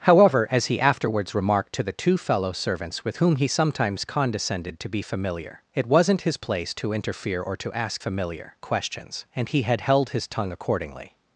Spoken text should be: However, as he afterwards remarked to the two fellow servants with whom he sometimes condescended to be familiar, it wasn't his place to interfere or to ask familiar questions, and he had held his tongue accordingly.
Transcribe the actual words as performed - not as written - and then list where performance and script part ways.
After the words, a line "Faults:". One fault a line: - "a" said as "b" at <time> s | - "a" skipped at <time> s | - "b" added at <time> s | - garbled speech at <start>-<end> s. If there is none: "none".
However, as he afterwards remarked to the two fellow servants with whom he sometimes condescended to be familiar, it wasn't his place to interfere or to ask familiar questions, and he had held his tongue accordingly.
Faults:
none